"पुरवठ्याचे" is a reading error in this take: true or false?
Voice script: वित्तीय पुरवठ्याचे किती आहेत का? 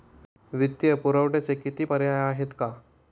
false